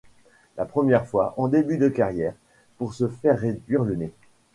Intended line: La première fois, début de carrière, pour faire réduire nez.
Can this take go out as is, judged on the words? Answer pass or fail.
fail